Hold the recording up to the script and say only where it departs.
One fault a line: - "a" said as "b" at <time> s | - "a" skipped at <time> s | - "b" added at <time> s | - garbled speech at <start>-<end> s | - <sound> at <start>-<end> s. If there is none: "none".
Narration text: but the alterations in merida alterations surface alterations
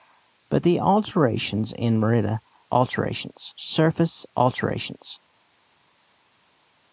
none